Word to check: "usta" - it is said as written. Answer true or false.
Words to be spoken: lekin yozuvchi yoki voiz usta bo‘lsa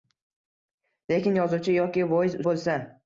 false